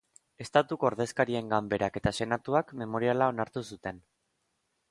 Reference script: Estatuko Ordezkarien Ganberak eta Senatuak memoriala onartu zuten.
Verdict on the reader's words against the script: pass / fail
pass